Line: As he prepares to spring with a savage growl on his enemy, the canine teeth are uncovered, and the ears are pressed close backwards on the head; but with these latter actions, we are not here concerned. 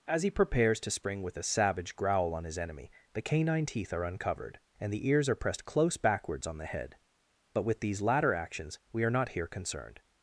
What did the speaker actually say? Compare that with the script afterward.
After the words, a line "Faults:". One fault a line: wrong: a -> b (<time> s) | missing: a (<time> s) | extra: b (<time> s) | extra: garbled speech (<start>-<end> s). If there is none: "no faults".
As he prepares to spring with a savage growl on his enemy, the canine teeth are uncovered, and the ears are pressed close backwards on the head; but with these latter actions, we are not here concerned.
Faults:
no faults